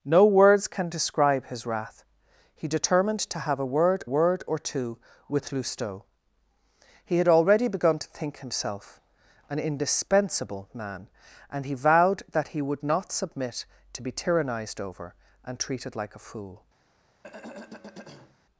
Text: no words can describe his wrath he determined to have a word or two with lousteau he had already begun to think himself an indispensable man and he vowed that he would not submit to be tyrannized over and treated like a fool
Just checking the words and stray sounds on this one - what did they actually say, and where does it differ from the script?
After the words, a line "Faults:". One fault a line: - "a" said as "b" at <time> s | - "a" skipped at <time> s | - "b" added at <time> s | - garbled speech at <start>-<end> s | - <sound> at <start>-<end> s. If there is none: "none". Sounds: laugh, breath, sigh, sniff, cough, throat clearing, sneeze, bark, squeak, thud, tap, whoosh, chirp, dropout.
no words can describe his wrath he determined to have a word word or two with lousteau he had already begun to think himself an indispensable man and he vowed that he would not submit to be tyrannized over and treated like a fool
Faults:
- "word" added at 4.0 s
- throat clearing at 17.2-18.4 s